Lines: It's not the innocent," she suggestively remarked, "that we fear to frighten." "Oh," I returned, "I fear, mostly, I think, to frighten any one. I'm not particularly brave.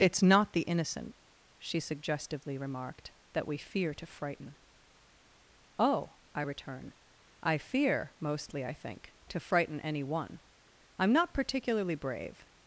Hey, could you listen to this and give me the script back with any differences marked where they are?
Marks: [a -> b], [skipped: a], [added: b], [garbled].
It's not the innocent," she suggestively remarked, "that we fear to frighten." "Oh," I [returned, -> return] "I fear, mostly, I think, to frighten any one. I'm not particularly brave.